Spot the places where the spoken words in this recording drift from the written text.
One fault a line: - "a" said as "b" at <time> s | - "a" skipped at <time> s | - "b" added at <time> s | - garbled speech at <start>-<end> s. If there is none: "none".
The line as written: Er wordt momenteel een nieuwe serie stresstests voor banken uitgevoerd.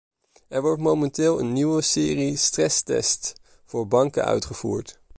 none